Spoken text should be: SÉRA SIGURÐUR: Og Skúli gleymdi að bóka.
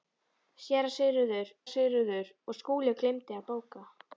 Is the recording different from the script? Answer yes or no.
yes